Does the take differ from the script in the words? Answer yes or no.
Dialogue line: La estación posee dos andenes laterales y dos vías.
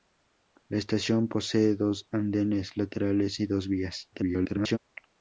yes